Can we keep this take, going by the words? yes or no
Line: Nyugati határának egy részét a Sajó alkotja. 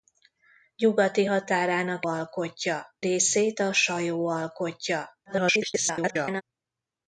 no